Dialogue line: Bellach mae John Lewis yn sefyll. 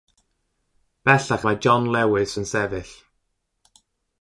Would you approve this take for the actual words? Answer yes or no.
yes